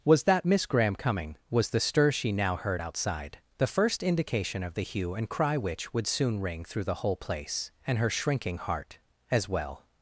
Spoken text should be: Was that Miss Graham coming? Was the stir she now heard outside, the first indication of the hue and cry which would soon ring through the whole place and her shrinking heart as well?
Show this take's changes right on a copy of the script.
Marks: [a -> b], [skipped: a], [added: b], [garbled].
Was that Miss Graham coming? Was the stir she now heard outside, the first indication of the hue and cry which would soon ring through the whole place and her shrinking heart as well?